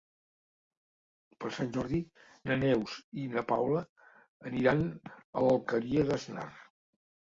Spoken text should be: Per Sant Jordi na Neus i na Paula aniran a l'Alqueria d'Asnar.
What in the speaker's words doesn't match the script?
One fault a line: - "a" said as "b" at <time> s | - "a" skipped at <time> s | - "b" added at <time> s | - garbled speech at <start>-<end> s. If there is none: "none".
none